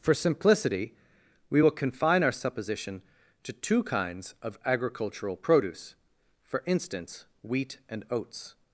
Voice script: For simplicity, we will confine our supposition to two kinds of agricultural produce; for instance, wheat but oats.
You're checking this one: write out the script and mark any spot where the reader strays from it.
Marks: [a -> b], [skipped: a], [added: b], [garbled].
For simplicity, we will confine our supposition to two kinds of agricultural produce; for instance, wheat [but -> and] oats.